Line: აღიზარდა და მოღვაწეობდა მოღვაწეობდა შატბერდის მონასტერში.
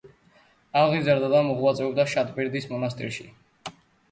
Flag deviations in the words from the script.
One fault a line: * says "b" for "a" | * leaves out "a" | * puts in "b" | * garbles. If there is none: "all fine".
* leaves out "მოღვაწეობდა"